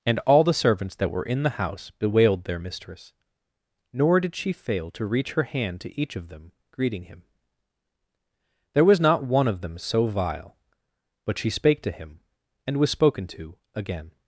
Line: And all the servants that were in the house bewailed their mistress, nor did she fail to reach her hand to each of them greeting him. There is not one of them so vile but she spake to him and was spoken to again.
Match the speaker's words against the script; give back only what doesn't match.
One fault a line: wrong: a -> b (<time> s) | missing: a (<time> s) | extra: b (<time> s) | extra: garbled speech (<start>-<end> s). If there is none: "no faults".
wrong: is -> was (8.8 s)